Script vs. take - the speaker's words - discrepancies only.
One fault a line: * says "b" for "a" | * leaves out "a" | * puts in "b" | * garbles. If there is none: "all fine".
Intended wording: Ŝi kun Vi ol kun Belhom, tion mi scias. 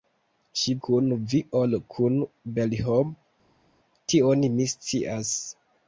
all fine